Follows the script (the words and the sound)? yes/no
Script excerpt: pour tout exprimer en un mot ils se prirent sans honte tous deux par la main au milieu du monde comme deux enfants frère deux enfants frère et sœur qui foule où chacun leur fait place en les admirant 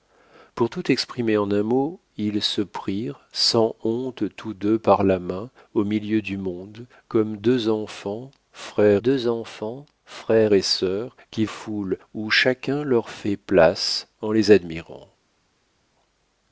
yes